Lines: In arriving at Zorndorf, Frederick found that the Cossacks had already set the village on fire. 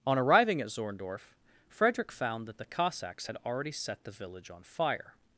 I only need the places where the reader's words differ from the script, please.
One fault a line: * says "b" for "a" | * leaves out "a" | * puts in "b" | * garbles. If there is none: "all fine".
* says "On" for "In"